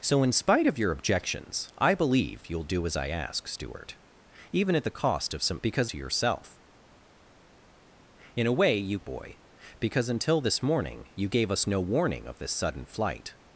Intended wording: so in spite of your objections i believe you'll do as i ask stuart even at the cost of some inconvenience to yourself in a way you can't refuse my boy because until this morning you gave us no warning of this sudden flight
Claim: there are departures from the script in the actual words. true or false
true